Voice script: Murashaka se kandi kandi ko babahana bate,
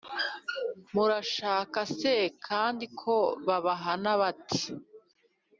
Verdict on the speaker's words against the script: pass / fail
fail